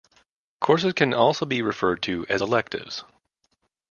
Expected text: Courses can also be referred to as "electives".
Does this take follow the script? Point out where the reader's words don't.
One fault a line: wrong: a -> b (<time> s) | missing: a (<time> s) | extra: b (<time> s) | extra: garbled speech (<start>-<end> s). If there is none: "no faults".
no faults